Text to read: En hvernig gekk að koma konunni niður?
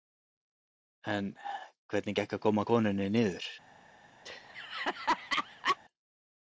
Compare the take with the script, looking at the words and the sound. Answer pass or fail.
fail